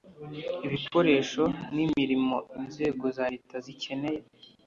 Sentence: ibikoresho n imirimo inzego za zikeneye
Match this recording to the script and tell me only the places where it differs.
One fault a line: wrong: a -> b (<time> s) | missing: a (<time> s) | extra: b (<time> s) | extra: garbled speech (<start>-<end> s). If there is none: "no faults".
extra: leta (3.3 s)